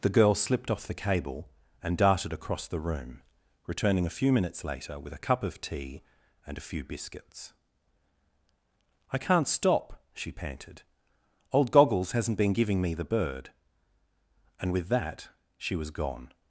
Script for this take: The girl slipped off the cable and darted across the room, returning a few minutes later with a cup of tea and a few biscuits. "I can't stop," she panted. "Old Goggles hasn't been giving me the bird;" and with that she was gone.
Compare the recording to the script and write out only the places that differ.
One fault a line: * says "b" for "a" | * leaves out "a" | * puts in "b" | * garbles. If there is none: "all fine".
all fine